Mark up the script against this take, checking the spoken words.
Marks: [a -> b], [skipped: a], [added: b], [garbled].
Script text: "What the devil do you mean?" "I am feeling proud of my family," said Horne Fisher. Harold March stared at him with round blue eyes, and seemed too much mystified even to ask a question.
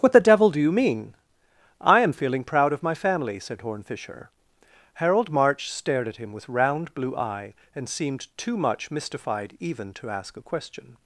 "What the devil do you mean?" "I am feeling proud of my family," said Horne Fisher. Harold March stared at him with round blue [eyes, -> eye] and seemed too much mystified even to ask a question.